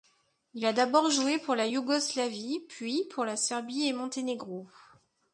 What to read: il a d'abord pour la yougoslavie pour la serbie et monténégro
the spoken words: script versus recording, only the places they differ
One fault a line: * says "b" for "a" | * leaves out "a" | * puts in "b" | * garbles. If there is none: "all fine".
* puts in "joué"
* puts in "puis"